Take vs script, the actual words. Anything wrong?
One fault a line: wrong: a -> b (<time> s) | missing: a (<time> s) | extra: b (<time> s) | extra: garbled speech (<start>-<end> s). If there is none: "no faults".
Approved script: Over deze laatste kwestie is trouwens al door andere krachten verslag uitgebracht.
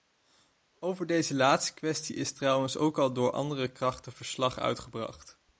extra: ook (2.8 s)